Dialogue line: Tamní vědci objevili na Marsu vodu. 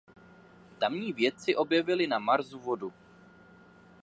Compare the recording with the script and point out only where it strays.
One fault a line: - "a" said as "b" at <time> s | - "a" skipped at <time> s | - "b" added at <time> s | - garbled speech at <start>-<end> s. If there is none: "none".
none